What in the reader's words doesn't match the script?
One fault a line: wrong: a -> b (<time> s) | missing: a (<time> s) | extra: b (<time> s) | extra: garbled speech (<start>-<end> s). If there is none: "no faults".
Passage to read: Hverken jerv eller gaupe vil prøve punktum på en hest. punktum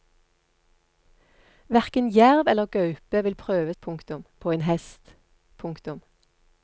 no faults